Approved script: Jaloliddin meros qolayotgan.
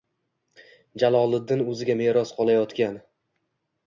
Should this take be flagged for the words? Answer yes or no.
yes